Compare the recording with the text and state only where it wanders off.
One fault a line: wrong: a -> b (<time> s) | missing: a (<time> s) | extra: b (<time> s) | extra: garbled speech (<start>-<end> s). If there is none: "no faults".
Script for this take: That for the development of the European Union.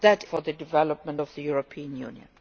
no faults